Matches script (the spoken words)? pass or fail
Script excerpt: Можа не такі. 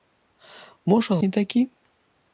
pass